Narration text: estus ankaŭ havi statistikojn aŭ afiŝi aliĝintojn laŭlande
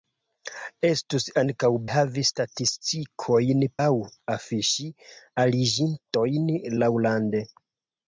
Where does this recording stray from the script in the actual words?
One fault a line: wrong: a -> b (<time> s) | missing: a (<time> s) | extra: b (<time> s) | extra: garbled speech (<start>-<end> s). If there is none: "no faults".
no faults